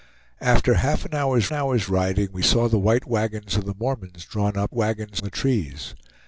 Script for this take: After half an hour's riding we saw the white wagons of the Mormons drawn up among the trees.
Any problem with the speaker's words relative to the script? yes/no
yes